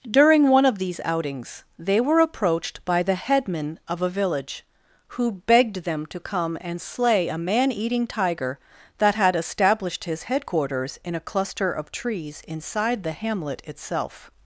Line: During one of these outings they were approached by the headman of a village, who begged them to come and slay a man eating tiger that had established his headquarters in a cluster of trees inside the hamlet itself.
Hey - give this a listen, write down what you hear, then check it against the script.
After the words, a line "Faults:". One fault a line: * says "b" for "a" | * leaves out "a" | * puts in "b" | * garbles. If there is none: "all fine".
During one of these outings they were approached by the headman of a village, who begged them to come and slay a man eating tiger that had established his headquarters in a cluster of trees inside the hamlet itself.
Faults:
all fine